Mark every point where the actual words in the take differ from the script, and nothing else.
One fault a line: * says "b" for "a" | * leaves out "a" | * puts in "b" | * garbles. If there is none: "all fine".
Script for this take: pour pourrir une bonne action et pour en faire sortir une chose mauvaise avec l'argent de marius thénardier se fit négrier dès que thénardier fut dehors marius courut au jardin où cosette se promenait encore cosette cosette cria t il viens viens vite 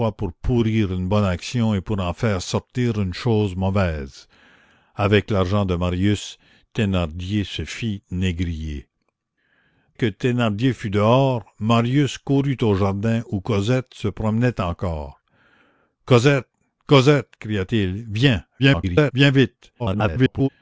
* leaves out "dès"
* garbles
* garbles